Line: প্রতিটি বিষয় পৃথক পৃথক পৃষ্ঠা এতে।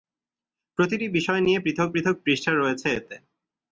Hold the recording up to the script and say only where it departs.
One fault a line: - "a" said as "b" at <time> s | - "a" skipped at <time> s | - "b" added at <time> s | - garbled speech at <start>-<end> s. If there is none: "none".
- "নিয়ে" added at 1.4 s
- "রয়েছে" added at 2.5 s